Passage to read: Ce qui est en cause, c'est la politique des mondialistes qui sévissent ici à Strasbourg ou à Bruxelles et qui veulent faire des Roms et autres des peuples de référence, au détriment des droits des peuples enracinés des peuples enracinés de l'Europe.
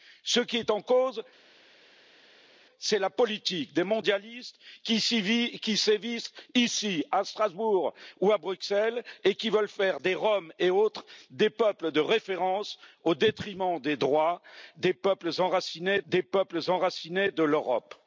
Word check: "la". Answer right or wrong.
right